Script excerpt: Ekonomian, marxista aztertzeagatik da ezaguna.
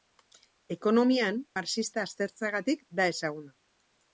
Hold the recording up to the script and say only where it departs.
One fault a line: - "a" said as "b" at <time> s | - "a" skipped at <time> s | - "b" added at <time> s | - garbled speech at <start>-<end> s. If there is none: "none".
none